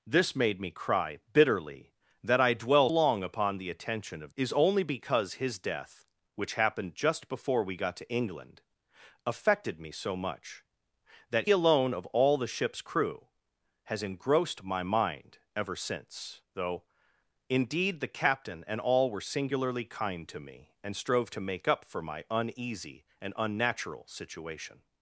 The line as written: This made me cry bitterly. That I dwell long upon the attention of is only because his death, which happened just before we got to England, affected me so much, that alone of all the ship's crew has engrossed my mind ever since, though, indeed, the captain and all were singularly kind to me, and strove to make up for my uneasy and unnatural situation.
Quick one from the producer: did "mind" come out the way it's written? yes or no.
yes